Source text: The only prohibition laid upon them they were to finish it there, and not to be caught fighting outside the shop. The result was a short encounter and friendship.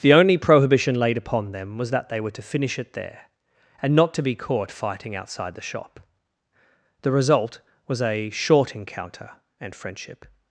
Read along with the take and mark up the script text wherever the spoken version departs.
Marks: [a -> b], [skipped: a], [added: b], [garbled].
The only prohibition laid upon them [added: was that] they were to finish it there, and not to be caught fighting outside the shop. The result was a short encounter and friendship.